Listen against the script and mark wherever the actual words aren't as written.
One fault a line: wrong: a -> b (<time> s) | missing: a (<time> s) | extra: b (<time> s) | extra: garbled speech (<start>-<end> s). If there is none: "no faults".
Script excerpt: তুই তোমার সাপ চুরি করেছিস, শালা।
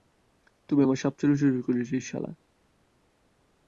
wrong: তোমার -> আমার (0.8 s)